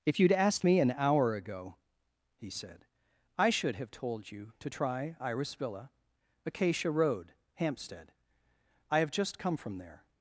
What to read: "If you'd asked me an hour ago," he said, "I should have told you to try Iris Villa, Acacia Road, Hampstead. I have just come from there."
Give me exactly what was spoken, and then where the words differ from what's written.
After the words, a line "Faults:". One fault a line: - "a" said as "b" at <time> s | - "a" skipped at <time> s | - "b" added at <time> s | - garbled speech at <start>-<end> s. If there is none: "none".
"If you'd asked me an hour ago," he said, "I should have told you to try Iris Villa, Acacia Road, Hampstead. I have just come from there."
Faults:
none